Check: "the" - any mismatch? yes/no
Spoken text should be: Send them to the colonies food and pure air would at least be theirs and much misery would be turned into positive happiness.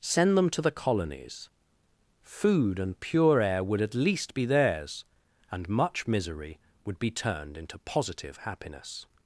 no